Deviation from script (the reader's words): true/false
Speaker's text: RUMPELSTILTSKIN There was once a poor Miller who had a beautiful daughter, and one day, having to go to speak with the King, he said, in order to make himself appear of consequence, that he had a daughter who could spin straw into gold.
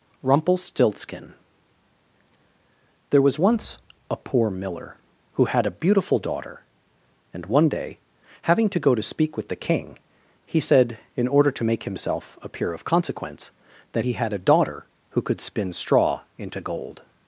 false